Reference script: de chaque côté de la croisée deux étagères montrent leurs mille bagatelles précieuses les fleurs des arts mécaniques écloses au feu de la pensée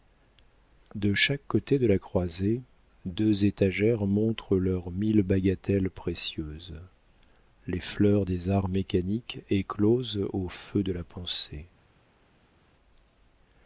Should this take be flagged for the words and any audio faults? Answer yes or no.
no